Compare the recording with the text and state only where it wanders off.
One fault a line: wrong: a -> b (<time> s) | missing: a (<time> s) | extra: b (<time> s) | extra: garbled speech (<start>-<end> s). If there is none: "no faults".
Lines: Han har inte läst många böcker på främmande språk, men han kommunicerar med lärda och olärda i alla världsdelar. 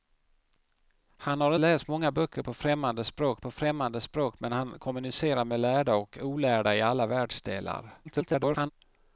missing: inte (1.6 s)
extra: på främmande språk (3.4 s)
extra: garbled speech (8.0-8.7 s)